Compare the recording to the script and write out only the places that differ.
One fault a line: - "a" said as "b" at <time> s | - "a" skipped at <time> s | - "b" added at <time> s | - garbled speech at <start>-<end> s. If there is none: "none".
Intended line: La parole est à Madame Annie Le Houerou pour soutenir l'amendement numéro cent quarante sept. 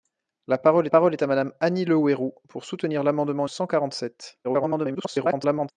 - "parole" added at 0.9 s
- "numéro" skipped at 3.5 s
- garbled speech at 4.4-5.7 s